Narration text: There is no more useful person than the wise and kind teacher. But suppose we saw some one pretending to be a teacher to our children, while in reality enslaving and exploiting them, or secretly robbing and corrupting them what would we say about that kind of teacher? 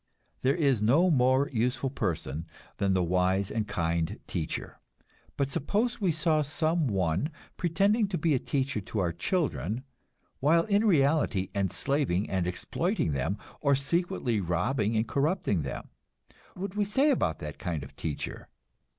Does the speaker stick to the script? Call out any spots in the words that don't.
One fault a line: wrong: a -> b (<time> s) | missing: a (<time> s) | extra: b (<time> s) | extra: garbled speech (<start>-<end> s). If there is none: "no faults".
missing: what (15.9 s)